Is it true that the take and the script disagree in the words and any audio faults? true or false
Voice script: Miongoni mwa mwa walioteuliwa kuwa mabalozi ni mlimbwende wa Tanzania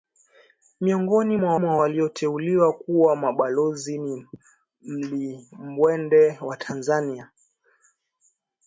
false